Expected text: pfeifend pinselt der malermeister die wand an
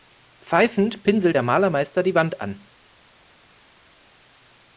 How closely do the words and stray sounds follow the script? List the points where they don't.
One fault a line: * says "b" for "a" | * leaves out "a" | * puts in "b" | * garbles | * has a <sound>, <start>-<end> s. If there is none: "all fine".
all fine